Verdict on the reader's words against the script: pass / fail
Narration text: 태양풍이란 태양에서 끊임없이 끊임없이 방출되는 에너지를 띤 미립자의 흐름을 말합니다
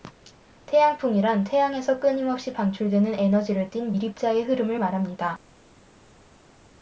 fail